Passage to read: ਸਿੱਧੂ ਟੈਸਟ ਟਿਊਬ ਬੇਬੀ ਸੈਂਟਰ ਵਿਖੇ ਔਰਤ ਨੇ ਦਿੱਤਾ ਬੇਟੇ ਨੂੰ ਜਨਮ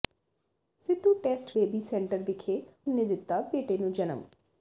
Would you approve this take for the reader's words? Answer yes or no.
no